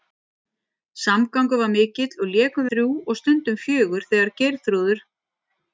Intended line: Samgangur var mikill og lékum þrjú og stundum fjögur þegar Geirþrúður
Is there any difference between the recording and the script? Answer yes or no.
no